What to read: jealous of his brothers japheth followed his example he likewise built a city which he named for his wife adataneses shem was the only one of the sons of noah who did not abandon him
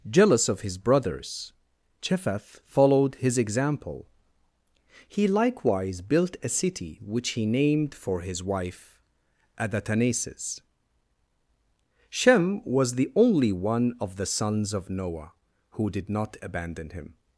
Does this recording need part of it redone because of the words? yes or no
no